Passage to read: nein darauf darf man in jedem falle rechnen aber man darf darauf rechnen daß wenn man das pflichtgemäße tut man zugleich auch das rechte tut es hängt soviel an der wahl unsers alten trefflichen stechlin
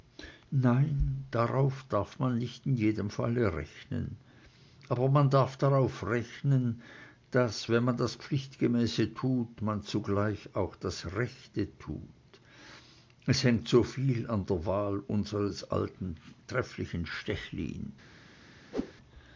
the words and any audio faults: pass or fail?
fail